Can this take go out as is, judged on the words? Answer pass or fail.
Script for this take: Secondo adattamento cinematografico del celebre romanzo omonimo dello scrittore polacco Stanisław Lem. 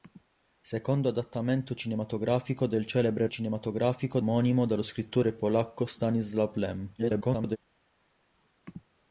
fail